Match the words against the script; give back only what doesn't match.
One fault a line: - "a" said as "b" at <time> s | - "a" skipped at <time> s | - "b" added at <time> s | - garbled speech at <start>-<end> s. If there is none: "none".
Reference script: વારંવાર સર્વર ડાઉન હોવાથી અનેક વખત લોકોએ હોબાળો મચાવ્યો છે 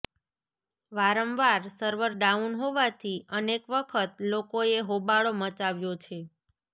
none